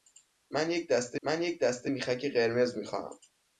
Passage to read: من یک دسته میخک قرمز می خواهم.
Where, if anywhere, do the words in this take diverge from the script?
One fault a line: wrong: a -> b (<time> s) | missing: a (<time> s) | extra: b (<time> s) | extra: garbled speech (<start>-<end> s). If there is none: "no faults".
extra: من یک دسته (1.2 s)